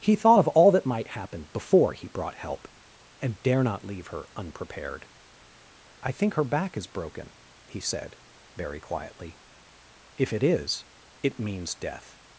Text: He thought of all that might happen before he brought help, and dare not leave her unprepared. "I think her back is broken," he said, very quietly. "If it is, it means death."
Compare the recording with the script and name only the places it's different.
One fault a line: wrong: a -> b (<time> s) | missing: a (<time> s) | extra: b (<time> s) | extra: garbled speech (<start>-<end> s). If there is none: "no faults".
no faults